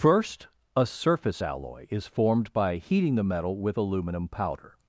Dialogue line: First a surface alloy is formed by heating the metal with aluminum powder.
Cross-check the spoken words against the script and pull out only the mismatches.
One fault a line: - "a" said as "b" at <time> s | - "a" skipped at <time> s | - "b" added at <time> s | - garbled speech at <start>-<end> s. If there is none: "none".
none